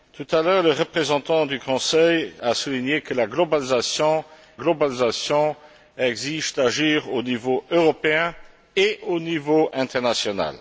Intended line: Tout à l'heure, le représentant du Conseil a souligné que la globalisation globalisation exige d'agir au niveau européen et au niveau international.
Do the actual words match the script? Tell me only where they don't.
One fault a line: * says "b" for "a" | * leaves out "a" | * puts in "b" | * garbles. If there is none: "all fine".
all fine